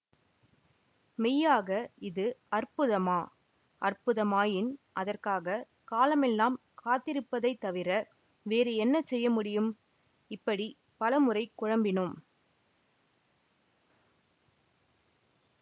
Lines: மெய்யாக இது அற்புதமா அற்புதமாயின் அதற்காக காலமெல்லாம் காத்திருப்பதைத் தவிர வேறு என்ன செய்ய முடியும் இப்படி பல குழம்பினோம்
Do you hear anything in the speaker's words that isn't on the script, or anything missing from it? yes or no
yes